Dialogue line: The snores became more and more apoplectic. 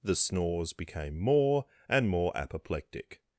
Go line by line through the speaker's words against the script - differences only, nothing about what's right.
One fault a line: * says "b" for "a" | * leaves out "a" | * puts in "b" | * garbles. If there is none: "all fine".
all fine